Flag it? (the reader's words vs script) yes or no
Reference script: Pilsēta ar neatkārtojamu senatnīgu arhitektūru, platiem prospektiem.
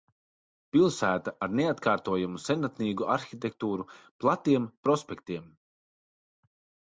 no